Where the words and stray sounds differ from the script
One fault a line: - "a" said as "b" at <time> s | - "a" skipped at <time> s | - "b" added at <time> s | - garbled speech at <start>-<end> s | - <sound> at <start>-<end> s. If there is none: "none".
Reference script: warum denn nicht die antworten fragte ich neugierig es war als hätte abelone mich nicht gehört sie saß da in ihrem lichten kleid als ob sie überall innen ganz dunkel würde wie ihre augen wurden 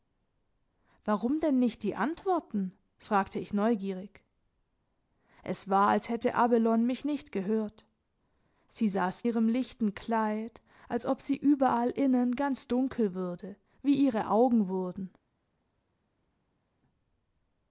- "da in" skipped at 9.2 s